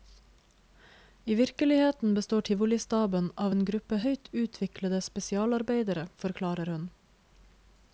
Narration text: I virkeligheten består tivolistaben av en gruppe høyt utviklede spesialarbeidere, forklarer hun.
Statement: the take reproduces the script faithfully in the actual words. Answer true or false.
true